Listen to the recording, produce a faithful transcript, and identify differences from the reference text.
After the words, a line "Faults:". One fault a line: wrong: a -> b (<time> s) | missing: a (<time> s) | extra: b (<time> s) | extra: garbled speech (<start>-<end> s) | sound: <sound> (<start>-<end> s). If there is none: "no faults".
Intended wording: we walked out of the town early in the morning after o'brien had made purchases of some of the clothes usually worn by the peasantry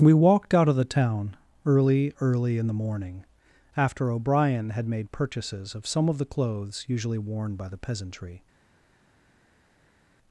we walked out of the town early early in the morning after o'brien had made purchases of some of the clothes usually worn by the peasantry
Faults:
extra: early (2.2 s)